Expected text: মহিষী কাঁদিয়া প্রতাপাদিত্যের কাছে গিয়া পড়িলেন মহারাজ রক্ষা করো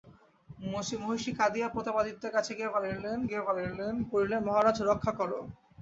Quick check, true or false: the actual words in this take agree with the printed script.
false